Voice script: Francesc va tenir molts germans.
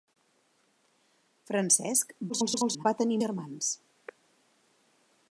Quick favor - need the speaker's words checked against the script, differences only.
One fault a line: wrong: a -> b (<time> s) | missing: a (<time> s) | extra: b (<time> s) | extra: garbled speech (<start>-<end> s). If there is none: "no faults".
extra: garbled speech (2.3-2.9 s)
missing: molts (3.2 s)